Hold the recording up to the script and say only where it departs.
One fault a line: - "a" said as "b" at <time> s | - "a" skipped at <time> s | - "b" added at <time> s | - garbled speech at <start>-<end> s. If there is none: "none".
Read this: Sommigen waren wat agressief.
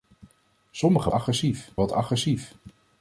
- "waren" said as "agressief" at 1.1 s